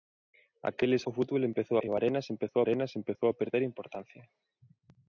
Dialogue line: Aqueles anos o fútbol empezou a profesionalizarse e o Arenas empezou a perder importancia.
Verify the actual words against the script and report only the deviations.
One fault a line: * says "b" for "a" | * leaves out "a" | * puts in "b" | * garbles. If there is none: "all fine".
* leaves out "anos"
* says "e o Arenas empezou" for "a profesionalizarse e o"